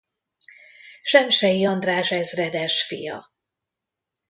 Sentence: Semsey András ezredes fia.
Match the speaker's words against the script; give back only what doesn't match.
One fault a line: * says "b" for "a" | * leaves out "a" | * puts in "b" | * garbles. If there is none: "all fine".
all fine